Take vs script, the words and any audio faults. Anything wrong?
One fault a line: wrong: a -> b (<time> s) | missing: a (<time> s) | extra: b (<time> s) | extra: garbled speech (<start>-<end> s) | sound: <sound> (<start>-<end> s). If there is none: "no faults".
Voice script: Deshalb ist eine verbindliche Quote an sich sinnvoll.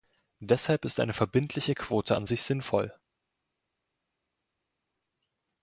no faults